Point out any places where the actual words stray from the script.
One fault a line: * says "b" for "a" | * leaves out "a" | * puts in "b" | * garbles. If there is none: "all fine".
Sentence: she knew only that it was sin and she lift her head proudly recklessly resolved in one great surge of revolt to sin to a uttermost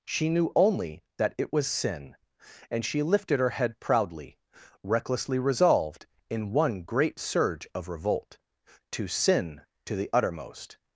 * says "lifted" for "lift"
* says "the" for "a"